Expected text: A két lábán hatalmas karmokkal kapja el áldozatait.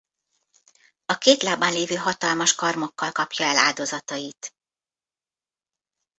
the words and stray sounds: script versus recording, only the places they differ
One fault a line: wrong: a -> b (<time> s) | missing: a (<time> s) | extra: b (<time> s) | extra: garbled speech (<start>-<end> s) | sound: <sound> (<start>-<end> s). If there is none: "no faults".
extra: lévő (1.7 s)